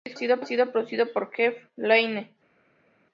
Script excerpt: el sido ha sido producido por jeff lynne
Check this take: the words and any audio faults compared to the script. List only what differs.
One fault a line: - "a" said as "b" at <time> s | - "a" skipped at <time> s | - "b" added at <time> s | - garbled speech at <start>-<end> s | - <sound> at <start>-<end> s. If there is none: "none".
none